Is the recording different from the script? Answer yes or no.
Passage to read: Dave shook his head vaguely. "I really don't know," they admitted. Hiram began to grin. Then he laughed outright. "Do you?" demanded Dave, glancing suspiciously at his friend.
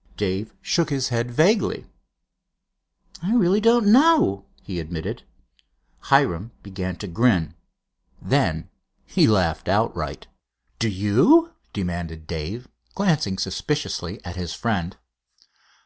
yes